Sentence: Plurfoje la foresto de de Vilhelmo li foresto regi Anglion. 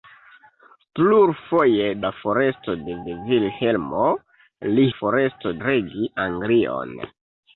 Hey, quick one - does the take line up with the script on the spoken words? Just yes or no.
yes